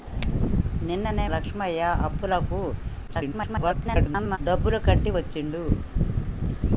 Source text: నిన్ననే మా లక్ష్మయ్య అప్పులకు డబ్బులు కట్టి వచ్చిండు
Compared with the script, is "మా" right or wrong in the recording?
wrong